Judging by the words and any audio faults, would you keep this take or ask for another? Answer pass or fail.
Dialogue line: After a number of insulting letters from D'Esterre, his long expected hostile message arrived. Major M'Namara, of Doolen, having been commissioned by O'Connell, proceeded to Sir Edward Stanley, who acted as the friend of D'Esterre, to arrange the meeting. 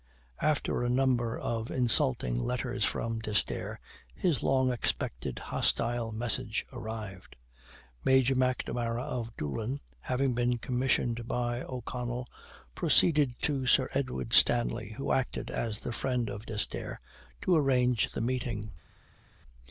pass